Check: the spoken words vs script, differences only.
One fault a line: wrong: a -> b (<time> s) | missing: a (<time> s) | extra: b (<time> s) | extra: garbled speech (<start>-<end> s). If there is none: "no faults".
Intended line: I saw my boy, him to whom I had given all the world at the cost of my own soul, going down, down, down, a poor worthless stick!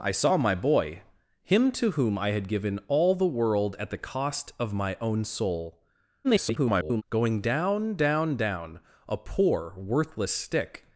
extra: garbled speech (6.2-7.0 s)